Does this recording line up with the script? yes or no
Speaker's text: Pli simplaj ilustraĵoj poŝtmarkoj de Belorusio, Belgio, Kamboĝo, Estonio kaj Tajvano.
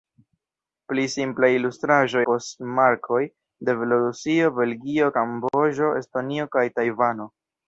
yes